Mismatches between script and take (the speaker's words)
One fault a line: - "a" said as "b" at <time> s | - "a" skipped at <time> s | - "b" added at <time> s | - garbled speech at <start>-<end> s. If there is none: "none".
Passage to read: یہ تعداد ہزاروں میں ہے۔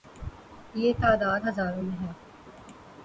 none